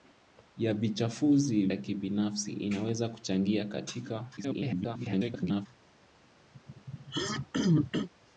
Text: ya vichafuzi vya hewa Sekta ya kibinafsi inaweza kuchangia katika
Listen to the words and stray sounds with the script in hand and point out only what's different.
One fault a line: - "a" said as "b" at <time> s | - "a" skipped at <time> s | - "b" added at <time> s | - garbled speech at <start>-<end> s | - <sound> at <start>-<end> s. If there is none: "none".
- "vya hewa Sekta" skipped at 1.7 s
- garbled speech at 4.4-5.7 s
- throat clearing at 6.5-8.1 s